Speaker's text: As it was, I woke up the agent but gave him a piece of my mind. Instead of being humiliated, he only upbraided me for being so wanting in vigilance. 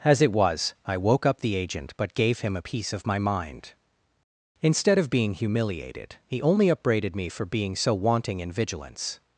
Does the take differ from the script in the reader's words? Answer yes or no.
no